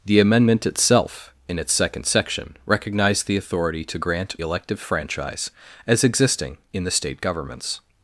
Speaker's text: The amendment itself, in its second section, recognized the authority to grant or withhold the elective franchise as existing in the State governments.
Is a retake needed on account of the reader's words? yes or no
yes